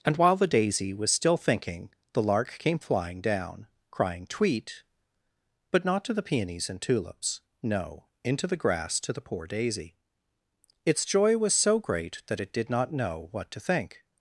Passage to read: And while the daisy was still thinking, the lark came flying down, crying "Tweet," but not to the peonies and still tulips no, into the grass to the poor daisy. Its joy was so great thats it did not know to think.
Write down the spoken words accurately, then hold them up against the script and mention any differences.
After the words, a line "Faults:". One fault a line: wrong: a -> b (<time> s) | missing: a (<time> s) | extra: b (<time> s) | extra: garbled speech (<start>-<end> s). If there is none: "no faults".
And while the daisy was still thinking, the lark came flying down, crying "Tweet," but not to the peonies and tulips no, into the grass to the poor daisy. Its joy was so great that it did not know what to think.
Faults:
missing: still (6.8 s)
wrong: thats -> that (12.3 s)
extra: what (13.3 s)